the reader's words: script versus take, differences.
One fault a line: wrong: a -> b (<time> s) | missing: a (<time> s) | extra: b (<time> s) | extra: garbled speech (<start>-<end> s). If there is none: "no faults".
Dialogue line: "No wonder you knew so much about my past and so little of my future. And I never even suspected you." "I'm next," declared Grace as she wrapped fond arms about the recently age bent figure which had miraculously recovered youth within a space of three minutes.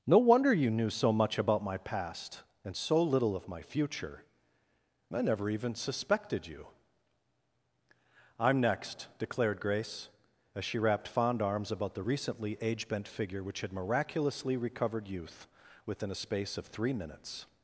missing: And (4.2 s)